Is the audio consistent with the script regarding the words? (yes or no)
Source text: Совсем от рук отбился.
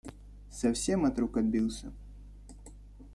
yes